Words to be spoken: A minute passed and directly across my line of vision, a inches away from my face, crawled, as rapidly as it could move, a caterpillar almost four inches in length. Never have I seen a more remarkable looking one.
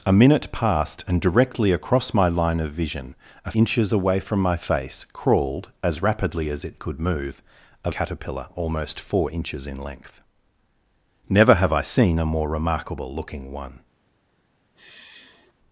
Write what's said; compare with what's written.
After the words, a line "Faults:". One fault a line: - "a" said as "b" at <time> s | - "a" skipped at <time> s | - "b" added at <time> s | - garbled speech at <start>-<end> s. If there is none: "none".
A minute passed and directly across my line of vision, a inches away from my face, crawled, as rapidly as it could move, a caterpillar almost four inches in length. Never have I seen a more remarkable looking one.
Faults:
none